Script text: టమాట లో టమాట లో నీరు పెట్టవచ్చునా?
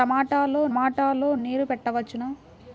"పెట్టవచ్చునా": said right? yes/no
yes